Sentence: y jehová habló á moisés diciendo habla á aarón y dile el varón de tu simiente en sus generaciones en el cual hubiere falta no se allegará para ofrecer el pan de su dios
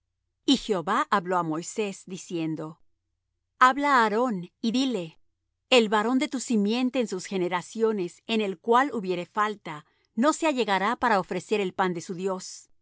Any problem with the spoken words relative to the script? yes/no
no